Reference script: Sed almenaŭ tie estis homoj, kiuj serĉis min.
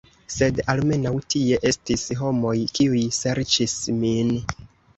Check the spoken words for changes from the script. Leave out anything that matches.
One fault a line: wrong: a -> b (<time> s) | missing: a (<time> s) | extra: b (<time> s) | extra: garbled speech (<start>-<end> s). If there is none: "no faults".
no faults